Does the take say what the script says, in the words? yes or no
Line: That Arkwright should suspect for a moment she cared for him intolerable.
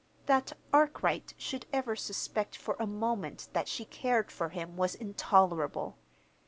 no